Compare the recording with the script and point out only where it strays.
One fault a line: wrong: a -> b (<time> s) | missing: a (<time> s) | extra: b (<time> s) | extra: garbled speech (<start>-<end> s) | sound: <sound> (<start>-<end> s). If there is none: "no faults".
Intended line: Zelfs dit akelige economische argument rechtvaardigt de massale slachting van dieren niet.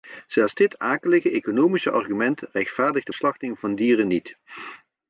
missing: massale (3.1 s)